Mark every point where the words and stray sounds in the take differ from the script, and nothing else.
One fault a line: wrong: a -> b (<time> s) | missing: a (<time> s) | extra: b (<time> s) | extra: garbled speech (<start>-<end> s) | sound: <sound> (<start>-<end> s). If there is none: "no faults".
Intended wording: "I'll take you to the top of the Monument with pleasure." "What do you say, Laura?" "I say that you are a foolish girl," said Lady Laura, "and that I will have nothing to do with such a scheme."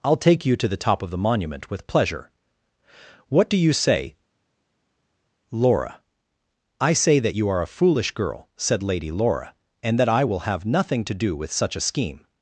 no faults